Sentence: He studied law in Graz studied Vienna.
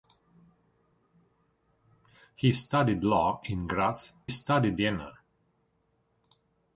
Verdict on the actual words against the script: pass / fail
pass